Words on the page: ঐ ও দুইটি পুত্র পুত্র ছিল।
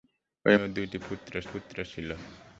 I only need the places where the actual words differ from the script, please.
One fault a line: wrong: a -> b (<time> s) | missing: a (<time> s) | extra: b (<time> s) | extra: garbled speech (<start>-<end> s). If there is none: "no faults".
no faults